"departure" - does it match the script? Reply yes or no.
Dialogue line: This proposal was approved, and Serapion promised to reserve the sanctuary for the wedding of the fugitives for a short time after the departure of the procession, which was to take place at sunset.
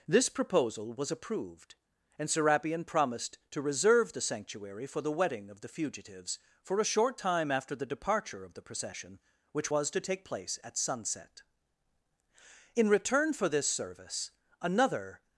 yes